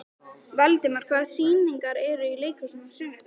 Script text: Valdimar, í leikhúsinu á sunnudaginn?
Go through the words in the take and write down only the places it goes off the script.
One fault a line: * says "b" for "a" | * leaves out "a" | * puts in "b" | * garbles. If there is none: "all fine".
* puts in "hvaða sýningar eru"